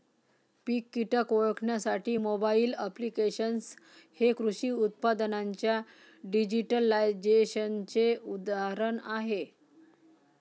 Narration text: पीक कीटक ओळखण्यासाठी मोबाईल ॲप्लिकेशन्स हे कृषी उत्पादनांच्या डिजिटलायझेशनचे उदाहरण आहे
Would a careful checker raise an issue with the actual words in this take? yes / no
no